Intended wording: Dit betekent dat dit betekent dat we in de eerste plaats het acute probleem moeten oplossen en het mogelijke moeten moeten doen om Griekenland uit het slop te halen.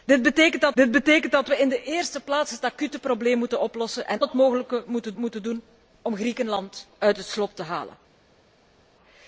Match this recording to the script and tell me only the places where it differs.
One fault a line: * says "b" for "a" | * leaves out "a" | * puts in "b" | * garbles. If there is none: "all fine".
all fine